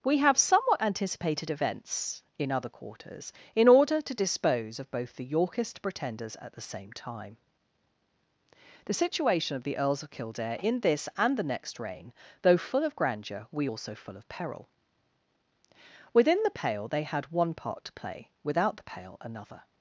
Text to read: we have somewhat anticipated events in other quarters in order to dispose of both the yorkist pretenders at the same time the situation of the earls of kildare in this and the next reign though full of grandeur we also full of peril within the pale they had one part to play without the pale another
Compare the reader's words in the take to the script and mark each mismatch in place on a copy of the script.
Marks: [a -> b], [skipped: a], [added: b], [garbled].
we have somewhat anticipated events in other quarters in order to dispose of both the yorkist pretenders at the same time the situation of the earls of kildare in this and the next reign though full of grandeur we also full of peril within the pale they had one part to play without the pale another